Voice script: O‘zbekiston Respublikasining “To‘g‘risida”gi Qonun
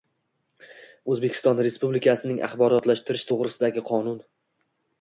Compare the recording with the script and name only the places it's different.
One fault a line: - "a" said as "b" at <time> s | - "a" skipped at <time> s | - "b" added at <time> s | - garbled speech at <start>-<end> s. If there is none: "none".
- "Axborotlashtirish" added at 2.5 s